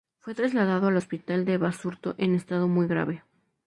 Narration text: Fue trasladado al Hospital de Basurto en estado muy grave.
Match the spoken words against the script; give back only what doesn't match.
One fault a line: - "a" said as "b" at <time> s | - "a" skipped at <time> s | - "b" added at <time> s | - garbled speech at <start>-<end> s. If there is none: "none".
none